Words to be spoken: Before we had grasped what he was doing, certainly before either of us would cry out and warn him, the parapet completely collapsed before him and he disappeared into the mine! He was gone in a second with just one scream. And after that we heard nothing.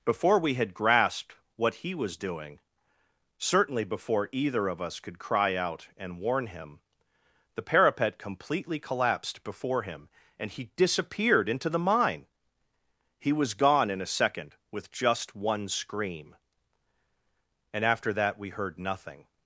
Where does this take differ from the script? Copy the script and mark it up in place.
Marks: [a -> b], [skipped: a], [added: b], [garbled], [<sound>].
Before we had grasped what he was doing, certainly before either of us [would -> could] cry out and warn him, the parapet completely collapsed before him and he disappeared into the mine! He was gone in a second with just one scream. And after that we heard nothing.